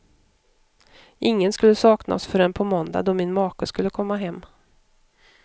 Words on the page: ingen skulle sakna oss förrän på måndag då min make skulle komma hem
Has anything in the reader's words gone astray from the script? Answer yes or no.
no